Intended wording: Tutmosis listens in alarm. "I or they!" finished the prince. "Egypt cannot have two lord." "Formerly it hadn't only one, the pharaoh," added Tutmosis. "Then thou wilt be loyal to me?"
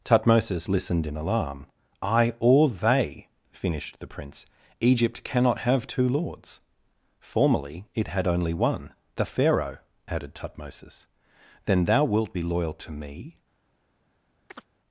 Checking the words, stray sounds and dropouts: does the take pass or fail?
fail